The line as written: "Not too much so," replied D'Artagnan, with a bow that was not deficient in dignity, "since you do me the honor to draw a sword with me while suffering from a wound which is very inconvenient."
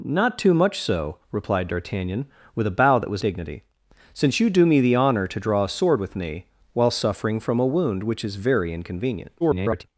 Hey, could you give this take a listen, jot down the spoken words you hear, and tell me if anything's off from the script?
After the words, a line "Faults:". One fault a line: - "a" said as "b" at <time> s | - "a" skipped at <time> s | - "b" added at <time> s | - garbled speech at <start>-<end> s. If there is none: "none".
"Not too much so," replied D'Artagnan, with a bow that was dignity, "since you do me the honor to draw a sword with me while suffering from a wound which is very inconvenient." [garbled]
Faults:
- "not deficient in" skipped at 3.2 s
- garbled speech at 9.4-9.8 s